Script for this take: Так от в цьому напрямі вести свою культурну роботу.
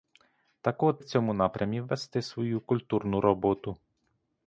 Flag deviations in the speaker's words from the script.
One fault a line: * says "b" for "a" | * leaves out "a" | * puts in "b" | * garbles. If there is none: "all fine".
all fine